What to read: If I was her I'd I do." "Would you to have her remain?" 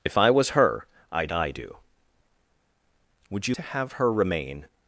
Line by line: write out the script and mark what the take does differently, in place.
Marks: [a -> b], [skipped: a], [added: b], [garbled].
If I was her I'd I do." "Would you to have her remain?"